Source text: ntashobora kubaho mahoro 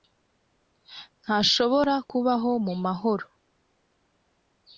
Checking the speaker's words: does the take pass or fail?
fail